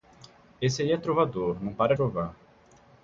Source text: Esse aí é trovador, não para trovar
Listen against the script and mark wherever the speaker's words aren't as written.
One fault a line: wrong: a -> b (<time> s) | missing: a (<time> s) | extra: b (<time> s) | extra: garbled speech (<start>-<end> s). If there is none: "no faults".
no faults